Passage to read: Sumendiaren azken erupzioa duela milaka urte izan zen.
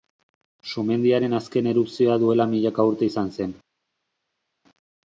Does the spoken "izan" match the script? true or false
true